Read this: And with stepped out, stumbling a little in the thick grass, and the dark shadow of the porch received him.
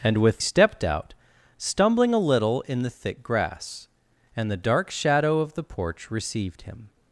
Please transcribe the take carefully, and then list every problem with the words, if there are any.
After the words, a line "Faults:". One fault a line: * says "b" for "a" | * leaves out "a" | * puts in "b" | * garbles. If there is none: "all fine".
And with stepped out, stumbling a little in the thick grass, and the dark shadow of the porch received him.
Faults:
all fine